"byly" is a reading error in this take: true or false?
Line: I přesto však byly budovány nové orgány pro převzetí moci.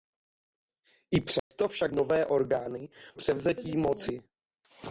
true